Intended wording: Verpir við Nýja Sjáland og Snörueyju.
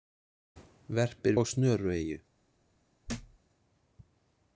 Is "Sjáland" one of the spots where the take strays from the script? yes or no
yes